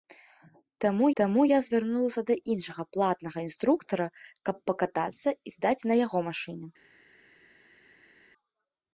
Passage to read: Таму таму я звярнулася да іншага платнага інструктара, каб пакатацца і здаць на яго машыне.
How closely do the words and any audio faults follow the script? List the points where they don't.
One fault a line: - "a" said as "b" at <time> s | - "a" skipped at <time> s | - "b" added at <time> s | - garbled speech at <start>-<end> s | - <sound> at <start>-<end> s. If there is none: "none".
none